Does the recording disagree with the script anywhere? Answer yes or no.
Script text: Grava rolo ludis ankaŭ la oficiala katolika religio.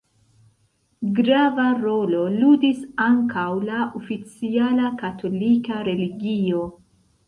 no